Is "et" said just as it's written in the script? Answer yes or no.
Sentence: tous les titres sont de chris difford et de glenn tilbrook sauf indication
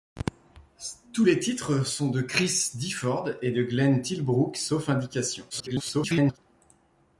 yes